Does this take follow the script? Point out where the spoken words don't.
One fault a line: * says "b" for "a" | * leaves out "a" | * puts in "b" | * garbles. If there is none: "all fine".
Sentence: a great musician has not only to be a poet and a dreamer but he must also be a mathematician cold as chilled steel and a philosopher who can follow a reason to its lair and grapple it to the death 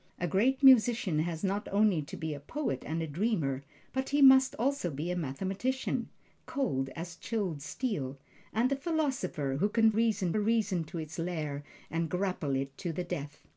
* says "reason" for "follow"